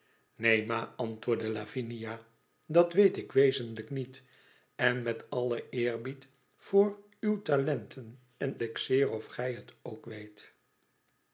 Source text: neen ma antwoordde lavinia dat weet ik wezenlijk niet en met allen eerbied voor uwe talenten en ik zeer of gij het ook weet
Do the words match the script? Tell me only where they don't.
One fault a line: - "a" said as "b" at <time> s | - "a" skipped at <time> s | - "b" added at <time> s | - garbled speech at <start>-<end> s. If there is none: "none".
none